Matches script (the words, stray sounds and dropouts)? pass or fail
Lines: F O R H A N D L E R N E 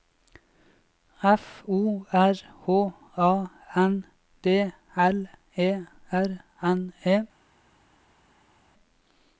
pass